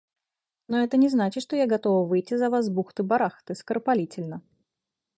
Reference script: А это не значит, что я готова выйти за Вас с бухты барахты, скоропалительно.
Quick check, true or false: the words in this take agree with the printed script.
false